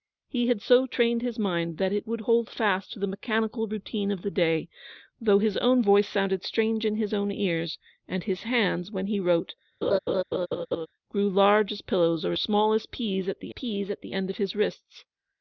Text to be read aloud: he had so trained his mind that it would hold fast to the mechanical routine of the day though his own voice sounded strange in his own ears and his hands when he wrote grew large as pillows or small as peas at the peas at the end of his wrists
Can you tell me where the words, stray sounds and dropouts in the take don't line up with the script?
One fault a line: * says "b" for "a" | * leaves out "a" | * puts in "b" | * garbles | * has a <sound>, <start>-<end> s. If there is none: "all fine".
* has a laugh, 9.8-10.9 s